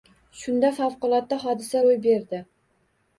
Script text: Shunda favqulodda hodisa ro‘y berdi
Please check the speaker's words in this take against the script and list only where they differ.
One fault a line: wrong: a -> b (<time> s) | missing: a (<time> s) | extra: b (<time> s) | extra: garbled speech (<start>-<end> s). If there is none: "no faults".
no faults